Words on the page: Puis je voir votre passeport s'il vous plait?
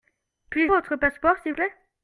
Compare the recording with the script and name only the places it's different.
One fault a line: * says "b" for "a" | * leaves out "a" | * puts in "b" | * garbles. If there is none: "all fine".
* leaves out "voir"
* leaves out "vous"